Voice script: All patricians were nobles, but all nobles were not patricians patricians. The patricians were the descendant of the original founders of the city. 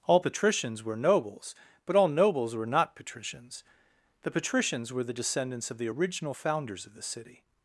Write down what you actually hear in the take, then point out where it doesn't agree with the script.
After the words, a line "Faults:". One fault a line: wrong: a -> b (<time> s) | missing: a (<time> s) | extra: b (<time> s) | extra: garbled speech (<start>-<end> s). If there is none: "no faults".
All patricians were nobles, but all nobles were not patricians. The patricians were the descendants of the original founders of the city.
Faults:
missing: patricians (3.6 s)
wrong: descendant -> descendants (5.1 s)